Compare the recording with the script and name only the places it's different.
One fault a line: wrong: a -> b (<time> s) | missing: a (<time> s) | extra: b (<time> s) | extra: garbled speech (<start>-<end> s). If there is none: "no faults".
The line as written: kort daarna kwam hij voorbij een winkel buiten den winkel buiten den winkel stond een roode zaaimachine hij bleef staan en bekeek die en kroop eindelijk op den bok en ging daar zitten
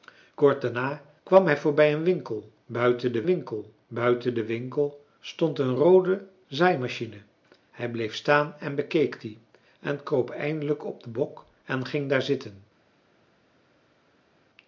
no faults